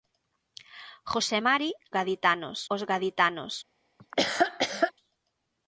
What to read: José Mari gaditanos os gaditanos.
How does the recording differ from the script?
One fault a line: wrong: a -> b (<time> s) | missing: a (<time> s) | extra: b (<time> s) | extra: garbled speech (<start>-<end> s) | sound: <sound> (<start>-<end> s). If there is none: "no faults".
sound: laugh (4.0-4.9 s)